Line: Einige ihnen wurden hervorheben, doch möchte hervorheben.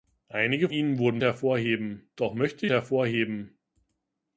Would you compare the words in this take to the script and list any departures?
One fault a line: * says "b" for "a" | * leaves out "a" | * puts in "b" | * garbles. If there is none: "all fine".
all fine